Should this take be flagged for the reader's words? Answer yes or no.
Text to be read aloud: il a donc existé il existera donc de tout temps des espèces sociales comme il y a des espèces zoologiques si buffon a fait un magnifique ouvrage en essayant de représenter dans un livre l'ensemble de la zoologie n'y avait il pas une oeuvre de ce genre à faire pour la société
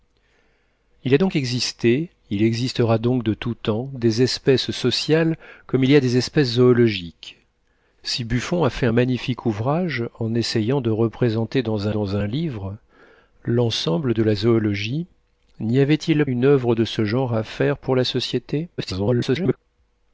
yes